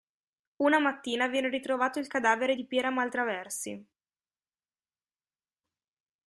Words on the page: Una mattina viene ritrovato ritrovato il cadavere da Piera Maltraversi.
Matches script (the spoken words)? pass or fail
fail